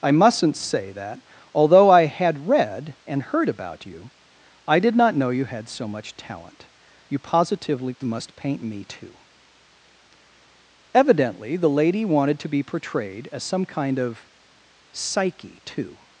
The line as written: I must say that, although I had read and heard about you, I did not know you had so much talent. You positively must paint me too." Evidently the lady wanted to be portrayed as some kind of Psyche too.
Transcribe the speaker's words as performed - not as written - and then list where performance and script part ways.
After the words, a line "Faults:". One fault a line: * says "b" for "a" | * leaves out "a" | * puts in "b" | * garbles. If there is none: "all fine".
I mustn't say that, although I had read and heard about you, I did not know you had so much talent. You positively must paint me too." Evidently the lady wanted to be portrayed as some kind of Psyche too.
Faults:
* says "mustn't" for "must"